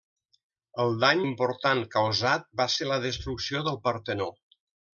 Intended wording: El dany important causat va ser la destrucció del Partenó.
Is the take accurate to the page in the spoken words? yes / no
yes